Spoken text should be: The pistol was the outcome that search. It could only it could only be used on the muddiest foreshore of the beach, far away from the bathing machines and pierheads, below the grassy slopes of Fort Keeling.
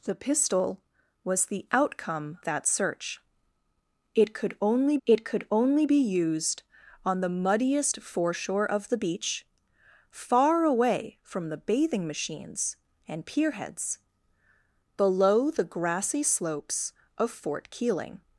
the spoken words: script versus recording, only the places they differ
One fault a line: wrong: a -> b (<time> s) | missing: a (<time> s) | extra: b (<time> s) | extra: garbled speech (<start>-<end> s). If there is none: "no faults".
no faults